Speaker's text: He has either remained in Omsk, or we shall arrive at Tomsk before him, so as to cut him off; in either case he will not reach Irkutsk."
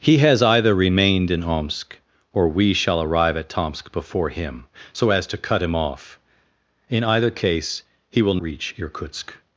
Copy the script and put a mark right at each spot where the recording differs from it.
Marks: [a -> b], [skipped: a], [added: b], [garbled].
He has either remained in Omsk, or we shall arrive at Tomsk before him, so as to cut him off; in either case he will [skipped: not] reach Irkutsk."